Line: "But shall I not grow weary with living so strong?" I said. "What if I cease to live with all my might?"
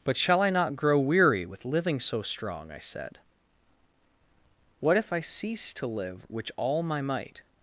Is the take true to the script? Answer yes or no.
no